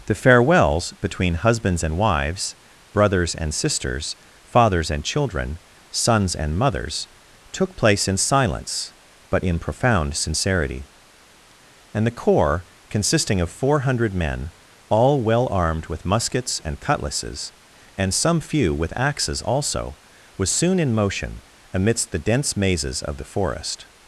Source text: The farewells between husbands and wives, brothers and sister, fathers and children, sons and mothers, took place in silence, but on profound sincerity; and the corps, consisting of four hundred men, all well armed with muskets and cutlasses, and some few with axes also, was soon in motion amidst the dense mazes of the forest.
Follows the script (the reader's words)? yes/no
no